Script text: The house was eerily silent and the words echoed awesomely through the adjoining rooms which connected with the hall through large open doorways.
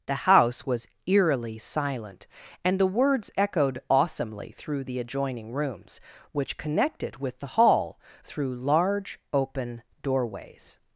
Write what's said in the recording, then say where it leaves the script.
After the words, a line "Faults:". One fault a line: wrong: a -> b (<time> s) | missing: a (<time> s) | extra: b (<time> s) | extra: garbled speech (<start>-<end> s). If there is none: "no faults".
The house was eerily silent and the words echoed awesomely through the adjoining rooms which connected with the hall through large open doorways.
Faults:
no faults